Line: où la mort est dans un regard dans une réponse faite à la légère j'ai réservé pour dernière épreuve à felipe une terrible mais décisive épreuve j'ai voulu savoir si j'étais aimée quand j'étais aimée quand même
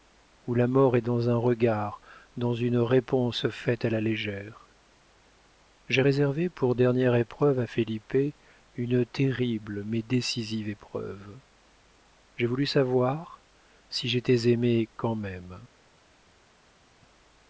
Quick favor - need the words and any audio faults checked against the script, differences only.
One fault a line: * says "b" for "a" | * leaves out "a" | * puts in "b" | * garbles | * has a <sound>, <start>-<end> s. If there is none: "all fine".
* leaves out "j'étais aimée quand"